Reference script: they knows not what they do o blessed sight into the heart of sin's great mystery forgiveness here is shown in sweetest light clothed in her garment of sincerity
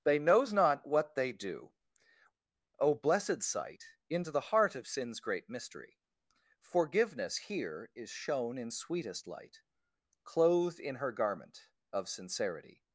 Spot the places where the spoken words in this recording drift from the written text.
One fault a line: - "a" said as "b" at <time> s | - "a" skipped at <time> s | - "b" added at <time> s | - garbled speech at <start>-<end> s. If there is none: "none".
none